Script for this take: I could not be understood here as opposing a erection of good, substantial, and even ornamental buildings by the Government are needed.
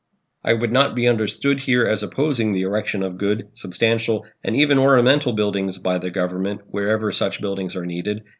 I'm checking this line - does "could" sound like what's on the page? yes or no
no